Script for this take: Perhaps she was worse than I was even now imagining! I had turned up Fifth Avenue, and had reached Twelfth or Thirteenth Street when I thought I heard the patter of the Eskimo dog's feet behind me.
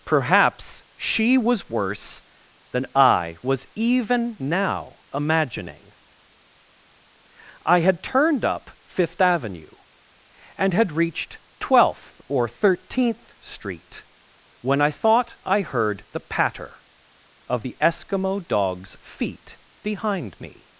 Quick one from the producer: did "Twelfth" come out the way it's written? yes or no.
yes